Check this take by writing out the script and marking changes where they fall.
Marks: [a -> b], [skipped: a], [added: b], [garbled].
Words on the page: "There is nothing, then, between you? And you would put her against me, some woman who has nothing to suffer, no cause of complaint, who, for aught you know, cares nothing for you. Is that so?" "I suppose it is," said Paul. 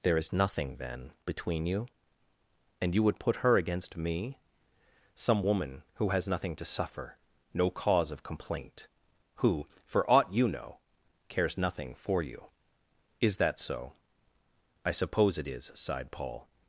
"There is nothing, then, between you? And you would put her against me, some woman who has nothing to suffer, no cause of complaint, who, for aught you know, cares nothing for you. Is that so?" "I suppose it is," [said -> sighed] Paul.